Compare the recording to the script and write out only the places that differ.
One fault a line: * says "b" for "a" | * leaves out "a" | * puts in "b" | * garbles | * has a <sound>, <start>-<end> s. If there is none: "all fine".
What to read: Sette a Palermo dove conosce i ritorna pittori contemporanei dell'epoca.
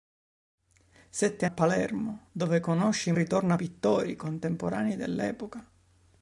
all fine